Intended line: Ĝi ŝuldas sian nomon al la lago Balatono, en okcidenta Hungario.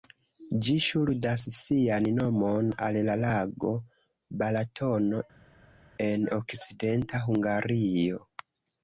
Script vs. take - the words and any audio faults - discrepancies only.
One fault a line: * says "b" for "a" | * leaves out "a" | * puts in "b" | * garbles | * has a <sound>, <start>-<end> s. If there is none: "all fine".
all fine